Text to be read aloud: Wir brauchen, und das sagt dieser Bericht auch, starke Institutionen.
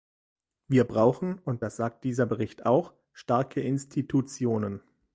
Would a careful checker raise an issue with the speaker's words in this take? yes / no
no